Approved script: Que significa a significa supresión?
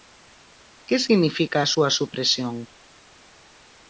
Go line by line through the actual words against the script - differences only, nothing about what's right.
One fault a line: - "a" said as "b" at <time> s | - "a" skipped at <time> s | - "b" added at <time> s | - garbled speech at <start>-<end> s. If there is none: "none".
- "significa" said as "súa" at 1.7 s